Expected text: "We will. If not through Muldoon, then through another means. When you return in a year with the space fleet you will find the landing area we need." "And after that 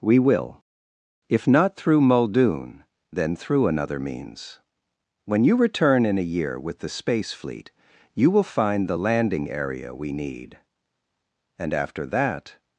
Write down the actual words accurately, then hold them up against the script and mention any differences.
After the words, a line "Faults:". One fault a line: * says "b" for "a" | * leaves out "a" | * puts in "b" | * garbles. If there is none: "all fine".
"We will. If not through Muldoon, then through another means. When you return in a year with the space fleet you will find the landing area we need." "And after that
Faults:
all fine